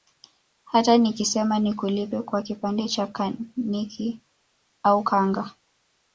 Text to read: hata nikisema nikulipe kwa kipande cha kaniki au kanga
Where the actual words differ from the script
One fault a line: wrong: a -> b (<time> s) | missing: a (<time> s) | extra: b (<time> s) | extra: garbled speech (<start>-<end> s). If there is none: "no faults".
no faults